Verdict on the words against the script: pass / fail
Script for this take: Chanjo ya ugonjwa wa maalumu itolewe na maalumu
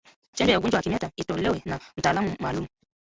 fail